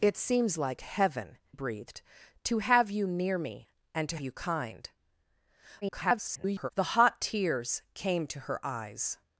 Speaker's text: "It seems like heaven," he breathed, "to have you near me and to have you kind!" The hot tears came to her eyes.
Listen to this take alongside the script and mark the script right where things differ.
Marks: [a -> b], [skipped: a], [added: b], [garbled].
"It seems like heaven," [skipped: he] breathed, "to have you near me and to [skipped: have] you kind!" [garbled] The hot tears came to her eyes.